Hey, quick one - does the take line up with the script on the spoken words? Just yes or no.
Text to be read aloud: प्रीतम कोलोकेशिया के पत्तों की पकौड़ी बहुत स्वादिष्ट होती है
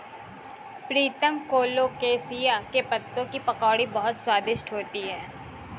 yes